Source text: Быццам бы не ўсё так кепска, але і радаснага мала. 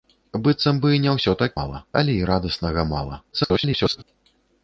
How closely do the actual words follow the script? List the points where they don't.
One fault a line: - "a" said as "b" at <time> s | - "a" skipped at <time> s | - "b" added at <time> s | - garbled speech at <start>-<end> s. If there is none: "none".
- "кепска" said as "мала" at 1.6 s
- garbled speech at 3.3-4.0 s